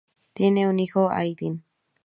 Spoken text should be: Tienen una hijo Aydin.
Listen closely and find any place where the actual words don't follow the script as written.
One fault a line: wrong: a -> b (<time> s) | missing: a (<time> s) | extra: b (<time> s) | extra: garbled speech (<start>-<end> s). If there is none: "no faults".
wrong: una -> un (0.7 s)